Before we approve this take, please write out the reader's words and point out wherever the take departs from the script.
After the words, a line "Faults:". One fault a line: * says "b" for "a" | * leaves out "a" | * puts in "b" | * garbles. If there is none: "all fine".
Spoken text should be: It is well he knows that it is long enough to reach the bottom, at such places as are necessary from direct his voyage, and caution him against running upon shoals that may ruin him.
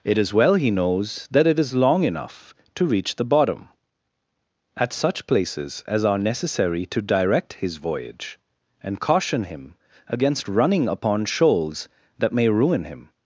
It is well he knows that it is long enough to reach the bottom, at such places as are necessary to direct his voyage, and caution him against running upon shoals that may ruin him.
Faults:
* says "to" for "from"